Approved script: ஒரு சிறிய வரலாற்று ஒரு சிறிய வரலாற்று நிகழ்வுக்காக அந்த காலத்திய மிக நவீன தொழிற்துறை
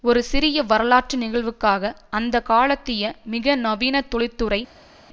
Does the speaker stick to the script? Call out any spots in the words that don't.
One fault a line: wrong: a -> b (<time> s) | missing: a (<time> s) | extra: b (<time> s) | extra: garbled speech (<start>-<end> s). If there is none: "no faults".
missing: ஒரு சிறிய வரலாற்று (1.2 s)